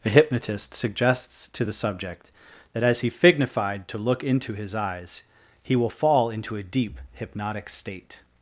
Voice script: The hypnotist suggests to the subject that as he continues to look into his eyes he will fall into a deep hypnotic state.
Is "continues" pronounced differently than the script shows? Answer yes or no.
yes